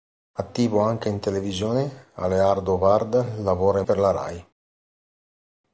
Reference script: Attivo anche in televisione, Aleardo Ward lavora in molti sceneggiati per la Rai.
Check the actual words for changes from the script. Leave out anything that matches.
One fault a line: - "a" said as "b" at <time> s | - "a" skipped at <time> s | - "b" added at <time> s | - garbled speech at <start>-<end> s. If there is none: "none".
- "molti sceneggiati" skipped at 3.9 s